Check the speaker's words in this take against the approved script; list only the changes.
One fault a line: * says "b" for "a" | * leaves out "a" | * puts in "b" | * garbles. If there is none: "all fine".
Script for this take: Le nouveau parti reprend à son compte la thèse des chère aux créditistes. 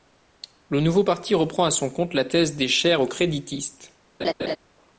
all fine